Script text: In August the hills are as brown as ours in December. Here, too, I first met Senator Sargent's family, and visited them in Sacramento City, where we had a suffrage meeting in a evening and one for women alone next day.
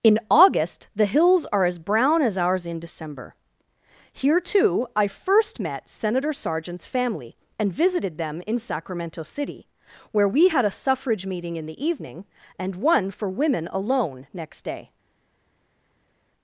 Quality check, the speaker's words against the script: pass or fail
fail